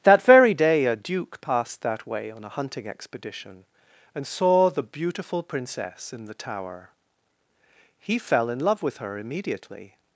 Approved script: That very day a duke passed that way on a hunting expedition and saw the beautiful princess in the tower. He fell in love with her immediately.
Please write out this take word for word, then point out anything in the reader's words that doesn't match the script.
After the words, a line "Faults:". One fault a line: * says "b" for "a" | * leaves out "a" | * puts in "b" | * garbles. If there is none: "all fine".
That very day a duke passed that way on a hunting expedition and saw the beautiful princess in the tower. He fell in love with her immediately.
Faults:
all fine